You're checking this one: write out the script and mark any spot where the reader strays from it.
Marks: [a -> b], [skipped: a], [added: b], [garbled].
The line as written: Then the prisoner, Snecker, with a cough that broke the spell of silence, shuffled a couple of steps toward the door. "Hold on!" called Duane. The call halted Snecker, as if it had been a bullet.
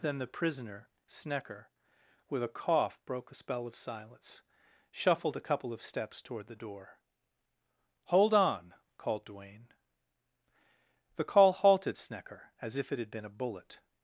Then the prisoner, Snecker, with a cough [skipped: that] broke the spell of silence, shuffled a couple of steps toward the door. "Hold on!" called Duane. The call halted Snecker, as if it had been a bullet.